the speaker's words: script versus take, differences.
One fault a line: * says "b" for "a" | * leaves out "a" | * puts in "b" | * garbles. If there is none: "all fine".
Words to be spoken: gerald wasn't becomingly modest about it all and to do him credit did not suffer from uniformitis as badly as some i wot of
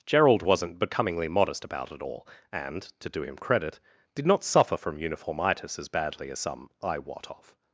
all fine